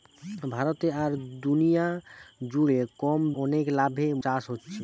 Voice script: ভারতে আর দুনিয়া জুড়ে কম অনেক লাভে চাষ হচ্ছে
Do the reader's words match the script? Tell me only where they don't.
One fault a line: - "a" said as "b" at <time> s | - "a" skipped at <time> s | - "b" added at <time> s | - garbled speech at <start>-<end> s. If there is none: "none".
none